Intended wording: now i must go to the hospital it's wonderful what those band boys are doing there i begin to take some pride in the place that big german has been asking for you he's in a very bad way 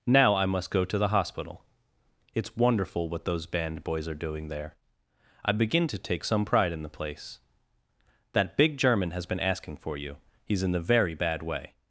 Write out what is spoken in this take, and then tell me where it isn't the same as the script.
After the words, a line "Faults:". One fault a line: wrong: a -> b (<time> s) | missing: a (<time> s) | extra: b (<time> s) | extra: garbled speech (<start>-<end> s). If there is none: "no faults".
now i must go to the hospital it's wonderful what those band boys are doing there i begin to take some pride in the place that big german has been asking for you he's in the very bad way
Faults:
wrong: a -> the (10.7 s)